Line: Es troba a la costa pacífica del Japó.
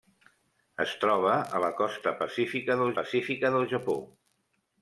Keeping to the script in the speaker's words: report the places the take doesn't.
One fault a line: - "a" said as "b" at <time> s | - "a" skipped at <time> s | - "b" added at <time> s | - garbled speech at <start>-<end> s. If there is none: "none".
- "pacífica del" added at 3.0 s